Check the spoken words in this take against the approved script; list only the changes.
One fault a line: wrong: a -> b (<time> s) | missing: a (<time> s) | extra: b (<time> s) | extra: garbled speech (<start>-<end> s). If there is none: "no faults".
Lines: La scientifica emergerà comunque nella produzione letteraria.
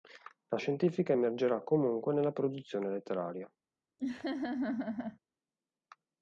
no faults